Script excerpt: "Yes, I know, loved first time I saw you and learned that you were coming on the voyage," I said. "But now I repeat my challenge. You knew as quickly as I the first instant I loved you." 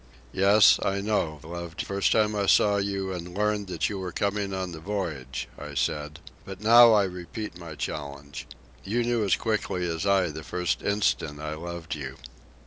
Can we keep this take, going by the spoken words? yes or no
yes